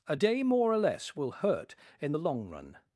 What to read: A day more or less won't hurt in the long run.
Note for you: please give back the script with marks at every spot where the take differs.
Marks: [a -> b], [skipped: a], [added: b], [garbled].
A day more or less [won't -> will] hurt in the long run.